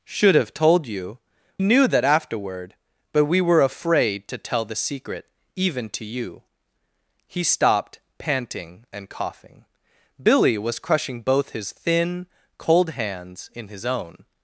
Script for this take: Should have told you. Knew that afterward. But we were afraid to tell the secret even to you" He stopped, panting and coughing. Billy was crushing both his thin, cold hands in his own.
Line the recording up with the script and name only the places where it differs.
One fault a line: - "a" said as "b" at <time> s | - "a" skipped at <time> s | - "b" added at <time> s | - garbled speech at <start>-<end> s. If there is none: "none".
none